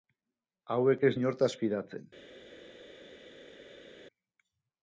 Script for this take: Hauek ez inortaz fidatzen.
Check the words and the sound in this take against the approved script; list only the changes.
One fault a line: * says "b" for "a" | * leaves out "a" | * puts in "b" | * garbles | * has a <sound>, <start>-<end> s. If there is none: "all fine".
all fine